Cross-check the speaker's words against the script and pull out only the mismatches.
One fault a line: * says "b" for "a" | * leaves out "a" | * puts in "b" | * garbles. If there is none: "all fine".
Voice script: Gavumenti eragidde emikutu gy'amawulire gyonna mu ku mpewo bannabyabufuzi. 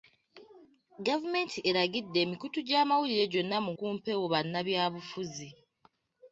all fine